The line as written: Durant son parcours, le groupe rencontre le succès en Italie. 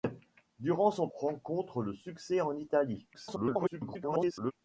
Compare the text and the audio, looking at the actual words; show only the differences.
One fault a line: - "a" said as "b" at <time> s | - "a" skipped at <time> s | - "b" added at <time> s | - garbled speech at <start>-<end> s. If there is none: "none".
- "parcours le groupe" skipped at 1.1 s
- garbled speech at 3.1-4.5 s